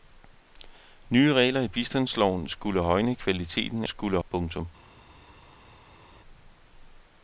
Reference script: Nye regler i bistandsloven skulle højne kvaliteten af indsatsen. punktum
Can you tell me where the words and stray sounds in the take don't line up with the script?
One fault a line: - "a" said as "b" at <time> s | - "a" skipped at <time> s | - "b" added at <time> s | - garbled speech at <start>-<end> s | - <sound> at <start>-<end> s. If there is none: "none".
- "indsatsen" said as "skulle" at 3.8 s